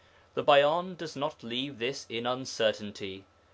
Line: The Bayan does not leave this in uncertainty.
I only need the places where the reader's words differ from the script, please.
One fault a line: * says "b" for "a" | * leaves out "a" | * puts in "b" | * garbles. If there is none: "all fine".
all fine